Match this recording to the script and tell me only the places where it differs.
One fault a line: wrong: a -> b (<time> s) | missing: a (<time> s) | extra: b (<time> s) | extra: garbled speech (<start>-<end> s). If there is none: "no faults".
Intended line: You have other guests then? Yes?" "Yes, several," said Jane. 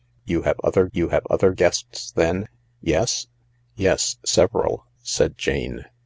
extra: you have other (0.9 s)